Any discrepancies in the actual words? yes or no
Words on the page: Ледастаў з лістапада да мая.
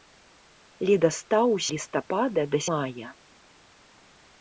no